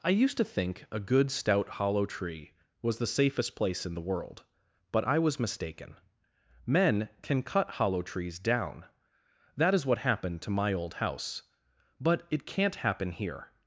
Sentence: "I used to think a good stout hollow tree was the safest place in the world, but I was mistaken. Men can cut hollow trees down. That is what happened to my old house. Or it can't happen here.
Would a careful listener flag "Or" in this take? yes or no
yes